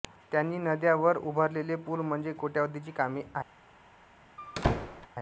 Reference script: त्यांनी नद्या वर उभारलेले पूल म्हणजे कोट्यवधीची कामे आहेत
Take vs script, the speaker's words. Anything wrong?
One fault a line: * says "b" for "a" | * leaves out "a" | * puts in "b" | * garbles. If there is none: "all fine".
all fine